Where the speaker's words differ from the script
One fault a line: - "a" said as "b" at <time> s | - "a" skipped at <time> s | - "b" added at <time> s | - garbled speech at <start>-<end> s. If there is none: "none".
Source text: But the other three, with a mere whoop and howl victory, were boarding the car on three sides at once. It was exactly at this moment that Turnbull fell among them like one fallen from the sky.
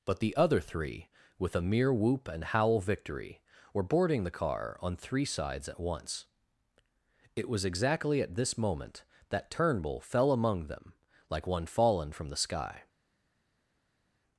none